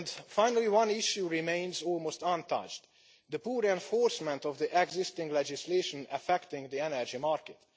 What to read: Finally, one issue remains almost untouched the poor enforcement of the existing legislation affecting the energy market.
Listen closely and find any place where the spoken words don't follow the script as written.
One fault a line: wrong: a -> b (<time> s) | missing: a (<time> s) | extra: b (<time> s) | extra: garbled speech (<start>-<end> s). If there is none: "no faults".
no faults